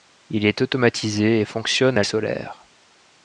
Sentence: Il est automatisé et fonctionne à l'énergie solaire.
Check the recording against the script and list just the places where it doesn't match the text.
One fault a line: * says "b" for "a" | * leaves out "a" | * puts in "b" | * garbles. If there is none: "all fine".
* leaves out "l'énergie"